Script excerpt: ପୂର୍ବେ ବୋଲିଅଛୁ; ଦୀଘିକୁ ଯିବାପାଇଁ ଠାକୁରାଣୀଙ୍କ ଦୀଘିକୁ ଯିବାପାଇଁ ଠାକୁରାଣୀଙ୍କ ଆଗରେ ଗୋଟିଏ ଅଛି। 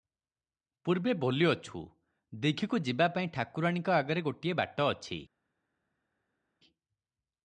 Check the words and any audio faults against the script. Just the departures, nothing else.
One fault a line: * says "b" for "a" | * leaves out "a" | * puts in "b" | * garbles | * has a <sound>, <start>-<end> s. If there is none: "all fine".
* leaves out "ଦୀଘିକୁ ଯିବାପାଇଁ ଠାକୁରାଣୀଙ୍କ"
* puts in "ବାଟ"